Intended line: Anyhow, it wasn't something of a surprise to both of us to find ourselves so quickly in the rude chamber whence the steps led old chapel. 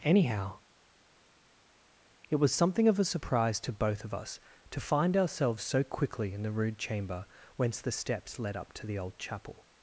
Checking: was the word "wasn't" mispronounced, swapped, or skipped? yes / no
yes